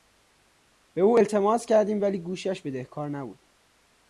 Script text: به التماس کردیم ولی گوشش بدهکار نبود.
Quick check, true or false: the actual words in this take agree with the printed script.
false